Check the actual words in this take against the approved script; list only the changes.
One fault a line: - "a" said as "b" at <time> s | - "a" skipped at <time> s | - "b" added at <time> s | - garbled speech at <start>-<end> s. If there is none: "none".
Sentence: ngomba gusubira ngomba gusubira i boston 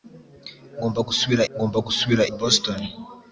none